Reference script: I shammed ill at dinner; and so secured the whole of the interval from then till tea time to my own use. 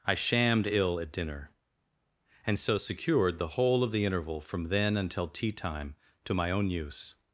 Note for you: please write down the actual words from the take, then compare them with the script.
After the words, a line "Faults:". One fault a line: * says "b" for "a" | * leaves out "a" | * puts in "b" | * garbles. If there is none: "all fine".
I shammed ill at dinner; and so secured the whole of the interval from then until tea time to my own use.
Faults:
* says "until" for "till"